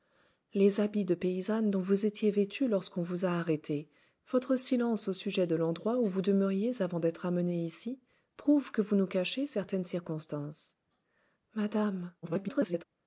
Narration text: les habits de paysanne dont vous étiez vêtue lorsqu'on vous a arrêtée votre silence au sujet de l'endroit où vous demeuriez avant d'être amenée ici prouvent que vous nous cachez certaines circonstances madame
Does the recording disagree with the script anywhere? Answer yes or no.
yes